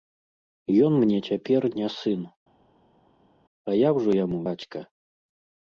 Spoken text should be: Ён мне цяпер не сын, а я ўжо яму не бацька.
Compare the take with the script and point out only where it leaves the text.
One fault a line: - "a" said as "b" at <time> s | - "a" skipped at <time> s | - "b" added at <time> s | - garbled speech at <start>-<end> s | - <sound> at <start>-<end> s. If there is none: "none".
- "не" skipped at 4.4 s